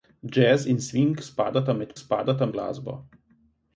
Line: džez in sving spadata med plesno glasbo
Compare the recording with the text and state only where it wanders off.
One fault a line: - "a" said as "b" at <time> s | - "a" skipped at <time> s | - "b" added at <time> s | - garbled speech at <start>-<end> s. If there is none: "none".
- "plesno" said as "spadata" at 2.0 s